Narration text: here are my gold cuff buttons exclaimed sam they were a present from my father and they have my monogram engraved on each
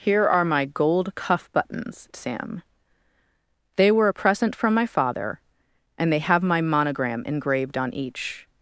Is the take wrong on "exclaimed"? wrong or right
wrong